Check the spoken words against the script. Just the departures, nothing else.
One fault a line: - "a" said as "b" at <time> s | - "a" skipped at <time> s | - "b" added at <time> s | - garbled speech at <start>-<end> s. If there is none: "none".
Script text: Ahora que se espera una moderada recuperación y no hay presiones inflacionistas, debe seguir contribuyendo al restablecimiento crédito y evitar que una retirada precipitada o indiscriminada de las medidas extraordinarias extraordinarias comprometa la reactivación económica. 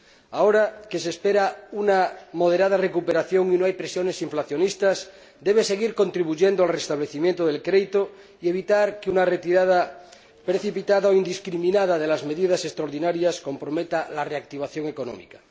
- "del" added at 7.5 s
- "extraordinarias" skipped at 13.4 s